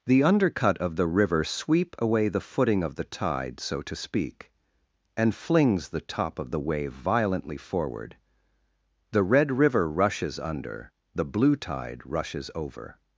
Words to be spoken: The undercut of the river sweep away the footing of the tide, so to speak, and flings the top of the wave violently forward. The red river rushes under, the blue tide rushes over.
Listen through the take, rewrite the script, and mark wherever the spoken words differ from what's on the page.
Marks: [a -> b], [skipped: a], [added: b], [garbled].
The undercut of the river sweep away the footing of the tide, so to speak, and flings the top of the wave violently forward. The red river rushes under, the blue tide rushes over.